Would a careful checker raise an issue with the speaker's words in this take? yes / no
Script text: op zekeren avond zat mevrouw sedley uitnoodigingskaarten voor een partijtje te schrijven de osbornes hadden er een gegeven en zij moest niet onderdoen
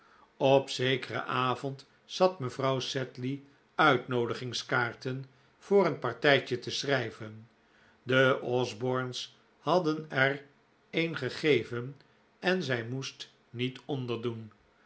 no